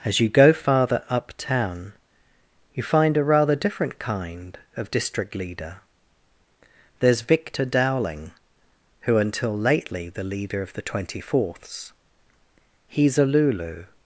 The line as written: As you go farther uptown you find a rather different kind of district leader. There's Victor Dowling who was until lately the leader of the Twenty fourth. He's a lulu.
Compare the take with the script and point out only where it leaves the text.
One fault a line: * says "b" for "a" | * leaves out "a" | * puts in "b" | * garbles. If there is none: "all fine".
* leaves out "was"
* says "fourths" for "fourth"